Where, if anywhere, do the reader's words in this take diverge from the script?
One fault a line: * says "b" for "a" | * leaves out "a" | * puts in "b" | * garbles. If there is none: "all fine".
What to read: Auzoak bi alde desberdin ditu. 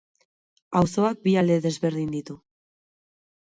all fine